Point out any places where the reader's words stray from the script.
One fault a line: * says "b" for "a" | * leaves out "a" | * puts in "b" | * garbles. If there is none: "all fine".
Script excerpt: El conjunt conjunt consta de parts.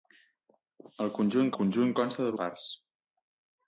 all fine